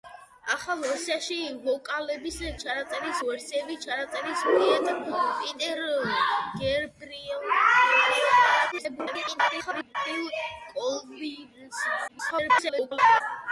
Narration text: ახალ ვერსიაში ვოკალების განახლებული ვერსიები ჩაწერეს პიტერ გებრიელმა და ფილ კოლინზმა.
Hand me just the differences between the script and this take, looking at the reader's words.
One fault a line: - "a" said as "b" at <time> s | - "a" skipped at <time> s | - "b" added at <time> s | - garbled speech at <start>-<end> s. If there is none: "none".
- "განახლებული" said as "ჩაწერეს" at 2.6 s
- garbled speech at 8.7-10.0 s
- garbled speech at 12.1-13.2 s